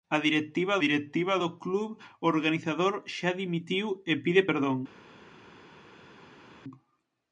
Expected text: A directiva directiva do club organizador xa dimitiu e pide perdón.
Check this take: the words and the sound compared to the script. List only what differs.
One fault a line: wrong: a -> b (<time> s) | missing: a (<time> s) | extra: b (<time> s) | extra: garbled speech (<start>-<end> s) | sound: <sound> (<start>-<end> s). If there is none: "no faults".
no faults